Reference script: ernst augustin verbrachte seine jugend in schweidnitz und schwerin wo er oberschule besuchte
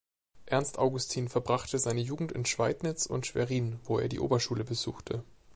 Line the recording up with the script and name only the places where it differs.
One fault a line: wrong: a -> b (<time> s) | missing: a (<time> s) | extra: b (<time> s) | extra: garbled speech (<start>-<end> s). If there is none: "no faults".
extra: die (4.1 s)